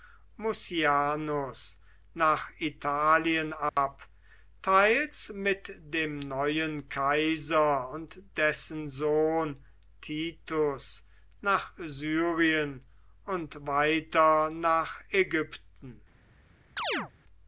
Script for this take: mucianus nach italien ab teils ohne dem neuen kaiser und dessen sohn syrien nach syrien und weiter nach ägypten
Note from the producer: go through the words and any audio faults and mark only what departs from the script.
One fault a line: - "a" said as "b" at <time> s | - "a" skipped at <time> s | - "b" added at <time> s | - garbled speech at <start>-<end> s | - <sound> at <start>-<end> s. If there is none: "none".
- dropout at 3.7-3.8 s
- "ohne" said as "mit" at 5.3 s
- "syrien" said as "titus" at 10.0 s
- chirp at 16.8-17.1 s